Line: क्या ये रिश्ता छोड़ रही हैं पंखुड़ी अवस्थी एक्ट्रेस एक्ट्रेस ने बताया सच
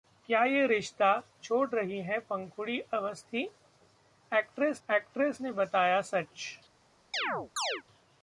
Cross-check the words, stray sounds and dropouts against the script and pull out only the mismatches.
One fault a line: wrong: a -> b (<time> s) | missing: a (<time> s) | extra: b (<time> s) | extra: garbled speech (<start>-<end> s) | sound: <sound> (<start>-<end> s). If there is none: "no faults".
sound: chirp (7.1-7.8 s)